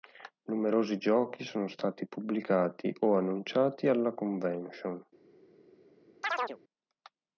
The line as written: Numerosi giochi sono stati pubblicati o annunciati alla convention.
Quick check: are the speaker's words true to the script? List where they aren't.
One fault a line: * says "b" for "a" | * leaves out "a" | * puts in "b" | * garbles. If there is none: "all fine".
all fine